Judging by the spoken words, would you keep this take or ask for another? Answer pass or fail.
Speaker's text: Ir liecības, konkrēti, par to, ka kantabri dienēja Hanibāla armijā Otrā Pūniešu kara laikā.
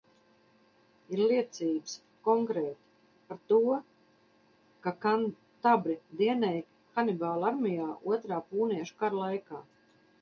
pass